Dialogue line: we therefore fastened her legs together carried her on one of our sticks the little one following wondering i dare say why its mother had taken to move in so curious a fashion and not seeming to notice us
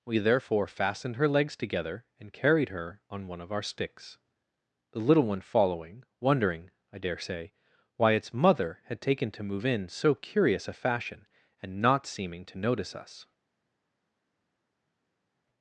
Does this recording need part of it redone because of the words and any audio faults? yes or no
yes